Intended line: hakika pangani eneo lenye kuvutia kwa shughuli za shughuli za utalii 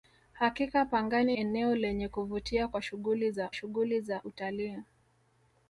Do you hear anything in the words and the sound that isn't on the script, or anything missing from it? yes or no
no